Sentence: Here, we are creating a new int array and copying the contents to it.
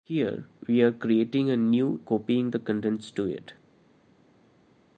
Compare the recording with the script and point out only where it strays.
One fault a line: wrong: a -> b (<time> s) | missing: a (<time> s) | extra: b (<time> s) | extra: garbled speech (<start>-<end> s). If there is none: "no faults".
missing: int array and (2.0 s)